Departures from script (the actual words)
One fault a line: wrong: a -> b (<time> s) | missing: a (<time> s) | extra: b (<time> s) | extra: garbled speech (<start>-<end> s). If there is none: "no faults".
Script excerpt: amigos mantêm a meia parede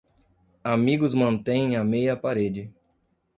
no faults